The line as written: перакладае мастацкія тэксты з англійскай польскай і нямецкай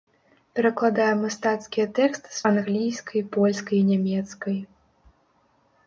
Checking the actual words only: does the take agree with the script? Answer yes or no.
yes